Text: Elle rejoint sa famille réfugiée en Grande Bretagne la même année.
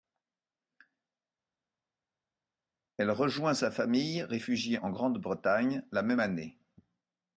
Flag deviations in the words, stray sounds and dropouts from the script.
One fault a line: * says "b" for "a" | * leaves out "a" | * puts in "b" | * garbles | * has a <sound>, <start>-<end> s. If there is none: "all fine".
all fine